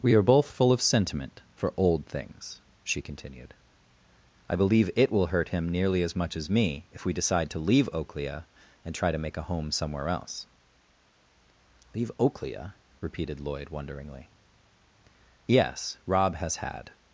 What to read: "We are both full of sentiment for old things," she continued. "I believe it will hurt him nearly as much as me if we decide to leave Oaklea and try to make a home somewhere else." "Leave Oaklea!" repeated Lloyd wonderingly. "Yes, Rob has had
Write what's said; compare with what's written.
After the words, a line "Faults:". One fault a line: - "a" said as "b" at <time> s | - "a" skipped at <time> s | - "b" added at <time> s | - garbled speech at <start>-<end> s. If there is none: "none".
"We are both full of sentiment for old things," she continued. "I believe it will hurt him nearly as much as me if we decide to leave Oaklea and try to make a home somewhere else." "Leave Oaklea!" repeated Lloyd wonderingly. "Yes, Rob has had
Faults:
none